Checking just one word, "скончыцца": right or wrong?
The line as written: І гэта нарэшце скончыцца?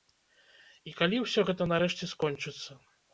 right